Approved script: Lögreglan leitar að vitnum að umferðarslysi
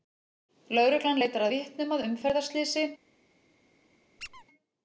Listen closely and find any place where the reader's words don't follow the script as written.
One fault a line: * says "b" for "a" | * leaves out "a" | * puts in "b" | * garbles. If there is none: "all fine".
* leaves out "að"